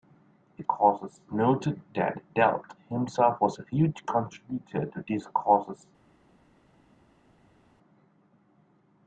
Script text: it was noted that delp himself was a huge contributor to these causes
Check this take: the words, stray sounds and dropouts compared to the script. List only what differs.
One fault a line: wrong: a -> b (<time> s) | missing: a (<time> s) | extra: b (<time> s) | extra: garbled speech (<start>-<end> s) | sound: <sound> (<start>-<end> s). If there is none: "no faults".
wrong: was -> causes (0.6 s)